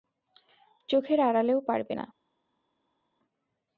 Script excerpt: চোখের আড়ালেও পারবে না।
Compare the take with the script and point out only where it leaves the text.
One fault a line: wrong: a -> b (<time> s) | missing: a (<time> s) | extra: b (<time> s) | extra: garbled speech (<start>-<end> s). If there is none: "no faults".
no faults